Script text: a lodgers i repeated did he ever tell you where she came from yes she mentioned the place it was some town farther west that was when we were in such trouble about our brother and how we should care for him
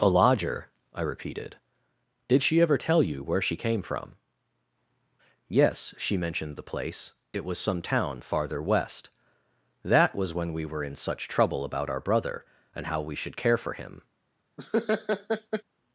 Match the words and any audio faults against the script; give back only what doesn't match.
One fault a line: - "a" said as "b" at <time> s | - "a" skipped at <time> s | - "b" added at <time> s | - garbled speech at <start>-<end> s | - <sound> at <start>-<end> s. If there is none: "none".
- "lodgers" said as "lodger" at 0.1 s
- "he" said as "she" at 2.4 s
- laugh at 14.6-15.6 s